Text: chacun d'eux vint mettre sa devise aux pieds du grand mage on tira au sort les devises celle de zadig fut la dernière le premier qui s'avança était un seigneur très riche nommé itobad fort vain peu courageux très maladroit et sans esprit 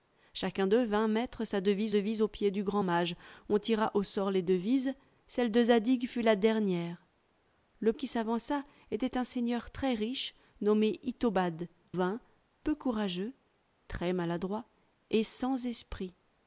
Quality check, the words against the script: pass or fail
fail